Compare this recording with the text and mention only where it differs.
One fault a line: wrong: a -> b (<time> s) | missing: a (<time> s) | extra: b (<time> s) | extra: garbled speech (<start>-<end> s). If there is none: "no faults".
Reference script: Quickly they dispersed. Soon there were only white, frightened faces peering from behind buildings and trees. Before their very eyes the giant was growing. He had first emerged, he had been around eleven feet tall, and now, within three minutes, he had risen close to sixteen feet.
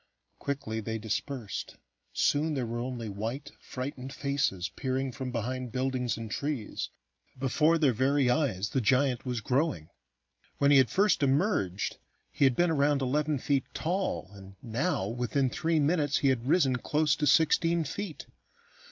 extra: When (10.6 s)